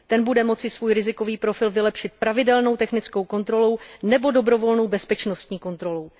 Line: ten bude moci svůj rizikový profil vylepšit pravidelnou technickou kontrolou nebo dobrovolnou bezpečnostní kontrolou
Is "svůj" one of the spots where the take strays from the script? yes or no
no